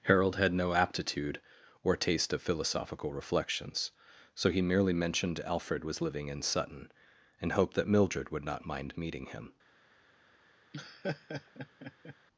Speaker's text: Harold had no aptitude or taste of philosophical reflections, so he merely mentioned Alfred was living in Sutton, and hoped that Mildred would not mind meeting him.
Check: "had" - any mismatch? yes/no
no